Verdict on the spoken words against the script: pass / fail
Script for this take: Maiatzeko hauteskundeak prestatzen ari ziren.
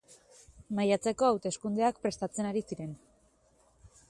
pass